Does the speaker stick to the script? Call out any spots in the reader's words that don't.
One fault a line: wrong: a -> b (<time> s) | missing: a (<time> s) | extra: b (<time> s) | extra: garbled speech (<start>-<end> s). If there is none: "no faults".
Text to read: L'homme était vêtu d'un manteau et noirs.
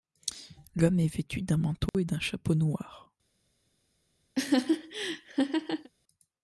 wrong: était -> est (1.0 s)
extra: d'un chapeau (2.0 s)